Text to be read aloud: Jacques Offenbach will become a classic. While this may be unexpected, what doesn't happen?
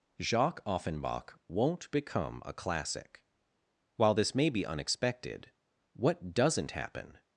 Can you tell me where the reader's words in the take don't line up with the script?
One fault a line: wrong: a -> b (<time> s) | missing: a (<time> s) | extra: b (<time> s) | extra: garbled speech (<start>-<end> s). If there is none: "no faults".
wrong: will -> won't (1.5 s)